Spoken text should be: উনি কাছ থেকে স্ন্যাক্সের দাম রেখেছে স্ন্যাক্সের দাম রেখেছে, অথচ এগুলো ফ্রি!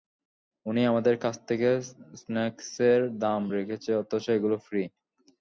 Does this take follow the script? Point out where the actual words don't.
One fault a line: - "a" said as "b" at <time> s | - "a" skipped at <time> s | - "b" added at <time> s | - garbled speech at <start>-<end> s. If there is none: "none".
- "আমাদের" added at 0.8 s
- "স্ন্যাক্সের দাম রেখেছে" skipped at 3.9 s